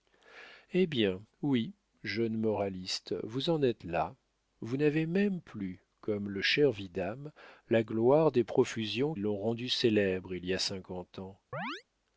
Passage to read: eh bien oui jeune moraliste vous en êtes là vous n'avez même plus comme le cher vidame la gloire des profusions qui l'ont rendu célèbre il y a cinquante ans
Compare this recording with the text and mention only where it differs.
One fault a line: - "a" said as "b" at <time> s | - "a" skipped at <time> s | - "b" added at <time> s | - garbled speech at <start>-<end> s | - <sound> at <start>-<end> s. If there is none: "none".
- "qui" skipped at 9.1 s
- chirp at 11.5-11.8 s